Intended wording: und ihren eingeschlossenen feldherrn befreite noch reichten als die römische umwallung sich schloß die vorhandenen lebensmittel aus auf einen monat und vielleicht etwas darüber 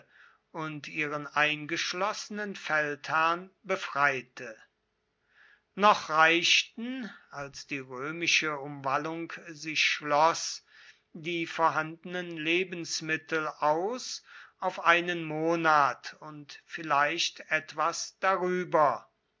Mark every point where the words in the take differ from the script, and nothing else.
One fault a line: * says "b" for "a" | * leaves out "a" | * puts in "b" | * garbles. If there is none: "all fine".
all fine